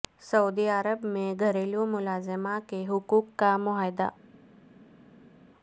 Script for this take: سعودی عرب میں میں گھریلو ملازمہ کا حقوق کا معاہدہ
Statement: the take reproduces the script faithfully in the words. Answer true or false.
false